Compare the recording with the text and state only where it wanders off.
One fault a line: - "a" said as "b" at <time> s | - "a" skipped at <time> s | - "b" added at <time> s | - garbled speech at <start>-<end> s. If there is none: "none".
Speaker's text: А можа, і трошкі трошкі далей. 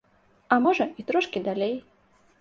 - "трошкі" skipped at 1.4 s